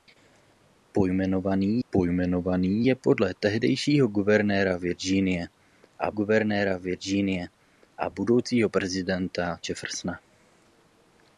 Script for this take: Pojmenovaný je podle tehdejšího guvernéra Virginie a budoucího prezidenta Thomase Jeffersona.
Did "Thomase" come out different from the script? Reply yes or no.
yes